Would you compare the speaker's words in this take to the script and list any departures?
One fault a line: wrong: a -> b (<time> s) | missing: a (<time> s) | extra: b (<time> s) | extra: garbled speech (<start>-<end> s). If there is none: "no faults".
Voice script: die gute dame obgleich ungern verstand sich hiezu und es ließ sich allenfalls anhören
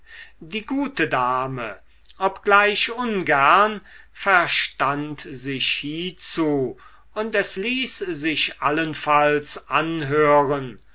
no faults